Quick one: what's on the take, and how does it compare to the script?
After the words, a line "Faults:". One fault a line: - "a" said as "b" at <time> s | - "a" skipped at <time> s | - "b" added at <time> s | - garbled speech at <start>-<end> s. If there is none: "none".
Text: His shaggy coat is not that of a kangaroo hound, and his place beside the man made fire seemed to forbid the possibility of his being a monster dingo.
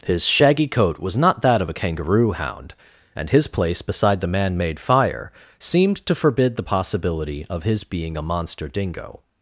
His shaggy coat was not that of a kangaroo hound, and his place beside the man made fire seemed to forbid the possibility of his being a monster dingo.
Faults:
- "is" said as "was" at 1.0 s